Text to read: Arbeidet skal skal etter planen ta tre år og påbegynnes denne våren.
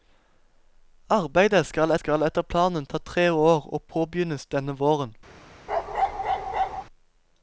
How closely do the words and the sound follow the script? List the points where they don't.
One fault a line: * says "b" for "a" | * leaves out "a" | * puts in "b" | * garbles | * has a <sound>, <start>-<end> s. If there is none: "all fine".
* has a bark, 5.7-6.8 s